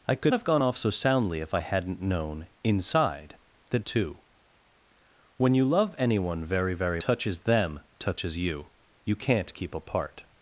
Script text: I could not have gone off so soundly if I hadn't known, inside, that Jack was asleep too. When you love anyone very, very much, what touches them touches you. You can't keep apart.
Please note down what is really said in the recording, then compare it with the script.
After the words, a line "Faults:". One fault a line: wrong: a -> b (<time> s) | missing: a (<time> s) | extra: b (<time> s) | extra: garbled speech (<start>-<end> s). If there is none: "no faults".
I could have gone off so soundly if I hadn't known, inside, that Too. When you love anyone very, very touches them touches you. You can't keep apart.
Faults:
missing: not (0.3 s)
missing: Jack was asleep (3.8 s)
missing: much what (7.0 s)